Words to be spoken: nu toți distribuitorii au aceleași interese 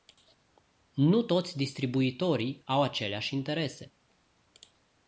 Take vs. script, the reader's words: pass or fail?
pass